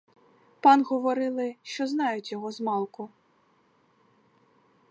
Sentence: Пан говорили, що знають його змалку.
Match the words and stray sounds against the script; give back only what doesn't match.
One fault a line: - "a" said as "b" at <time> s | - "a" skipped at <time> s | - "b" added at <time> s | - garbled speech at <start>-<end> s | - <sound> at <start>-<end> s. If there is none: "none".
none